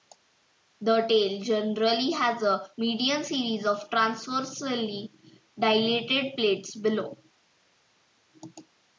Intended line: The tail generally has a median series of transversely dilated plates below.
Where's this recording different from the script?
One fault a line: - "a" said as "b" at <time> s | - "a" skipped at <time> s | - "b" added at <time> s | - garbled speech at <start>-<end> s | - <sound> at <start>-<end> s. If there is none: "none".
none